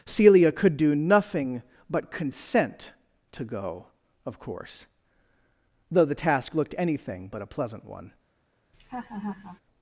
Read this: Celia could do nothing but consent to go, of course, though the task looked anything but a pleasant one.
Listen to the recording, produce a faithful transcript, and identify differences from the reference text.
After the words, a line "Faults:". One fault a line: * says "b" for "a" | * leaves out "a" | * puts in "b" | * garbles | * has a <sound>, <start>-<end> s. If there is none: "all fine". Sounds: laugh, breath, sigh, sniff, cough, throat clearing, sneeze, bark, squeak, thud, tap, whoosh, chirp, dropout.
Celia could do nothing but consent to go, of course, though the task looked anything but a pleasant one.
Faults:
* has a laugh, 8.7-9.6 s